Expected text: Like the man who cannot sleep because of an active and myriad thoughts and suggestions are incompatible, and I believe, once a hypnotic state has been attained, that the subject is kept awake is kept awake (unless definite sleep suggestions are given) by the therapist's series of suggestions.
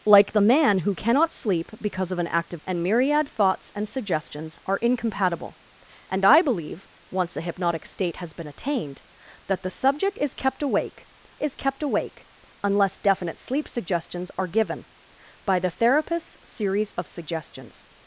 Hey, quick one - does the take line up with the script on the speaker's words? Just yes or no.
yes